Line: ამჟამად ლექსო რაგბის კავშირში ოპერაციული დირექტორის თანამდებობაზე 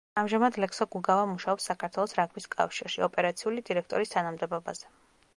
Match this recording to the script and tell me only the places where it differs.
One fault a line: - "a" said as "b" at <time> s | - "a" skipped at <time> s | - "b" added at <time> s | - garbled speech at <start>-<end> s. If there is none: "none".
- "გუგავა მუშაობს საქართველოს" added at 0.9 s